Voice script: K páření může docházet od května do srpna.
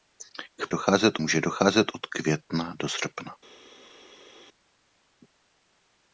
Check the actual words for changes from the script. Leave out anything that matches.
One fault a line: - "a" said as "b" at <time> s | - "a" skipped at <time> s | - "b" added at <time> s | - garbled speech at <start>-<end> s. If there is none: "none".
- "páření" said as "docházet" at 0.7 s